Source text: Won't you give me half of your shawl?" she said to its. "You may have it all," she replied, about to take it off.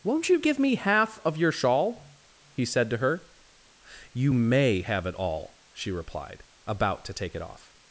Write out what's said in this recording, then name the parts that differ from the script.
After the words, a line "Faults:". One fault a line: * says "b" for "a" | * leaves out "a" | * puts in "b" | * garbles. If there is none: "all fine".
Won't you give me half of your shawl?" he said to her. "You may have it all," she replied, about to take it off.
Faults:
* says "he" for "she"
* says "her" for "its"